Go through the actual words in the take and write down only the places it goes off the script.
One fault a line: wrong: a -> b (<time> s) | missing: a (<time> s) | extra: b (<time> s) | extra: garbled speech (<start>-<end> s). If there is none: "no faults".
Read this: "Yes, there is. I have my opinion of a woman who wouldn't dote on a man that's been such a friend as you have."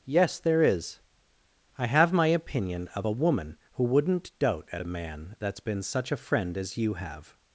wrong: on -> at (4.7 s)